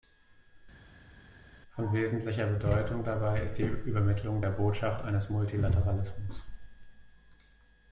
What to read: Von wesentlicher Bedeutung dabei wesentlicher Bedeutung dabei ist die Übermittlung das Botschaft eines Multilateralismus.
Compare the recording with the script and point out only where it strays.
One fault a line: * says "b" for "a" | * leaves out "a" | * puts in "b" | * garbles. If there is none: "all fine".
* leaves out "wesentlicher Bedeutung dabei"
* says "der" for "das"